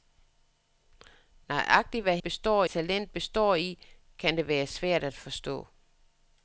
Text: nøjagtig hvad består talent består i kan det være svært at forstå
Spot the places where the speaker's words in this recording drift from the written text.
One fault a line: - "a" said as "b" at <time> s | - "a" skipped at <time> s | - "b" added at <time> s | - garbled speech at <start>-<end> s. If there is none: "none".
none